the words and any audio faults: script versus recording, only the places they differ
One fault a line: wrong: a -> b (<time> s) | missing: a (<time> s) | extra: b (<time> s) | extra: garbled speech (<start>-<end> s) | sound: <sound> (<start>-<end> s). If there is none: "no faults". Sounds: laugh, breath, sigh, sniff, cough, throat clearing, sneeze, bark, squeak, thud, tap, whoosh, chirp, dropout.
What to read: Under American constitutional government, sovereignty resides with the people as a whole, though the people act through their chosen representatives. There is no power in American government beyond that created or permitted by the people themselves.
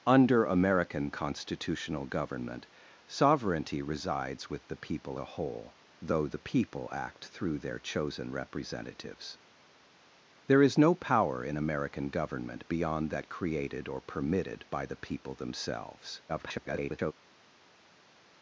missing: as (5.2 s)
extra: garbled speech (16.3-17.1 s)